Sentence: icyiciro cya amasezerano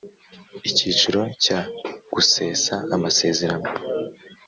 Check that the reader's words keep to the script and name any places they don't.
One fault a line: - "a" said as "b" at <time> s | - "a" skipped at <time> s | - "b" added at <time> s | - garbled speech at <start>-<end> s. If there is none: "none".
- "gusesa" added at 2.1 s